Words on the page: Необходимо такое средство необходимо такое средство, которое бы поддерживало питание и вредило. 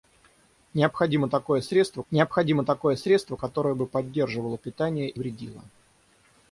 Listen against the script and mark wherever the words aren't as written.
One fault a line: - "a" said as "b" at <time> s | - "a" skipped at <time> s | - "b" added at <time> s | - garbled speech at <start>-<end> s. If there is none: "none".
none